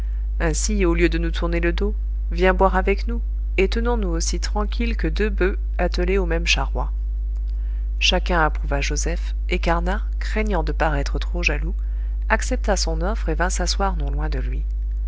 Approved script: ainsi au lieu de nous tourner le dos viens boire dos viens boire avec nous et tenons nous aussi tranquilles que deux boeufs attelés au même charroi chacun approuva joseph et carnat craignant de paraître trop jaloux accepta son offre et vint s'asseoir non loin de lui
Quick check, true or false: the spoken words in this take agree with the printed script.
false